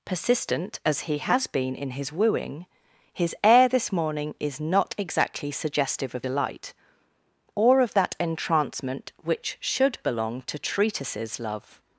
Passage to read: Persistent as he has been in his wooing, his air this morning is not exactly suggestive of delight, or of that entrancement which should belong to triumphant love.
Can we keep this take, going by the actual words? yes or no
no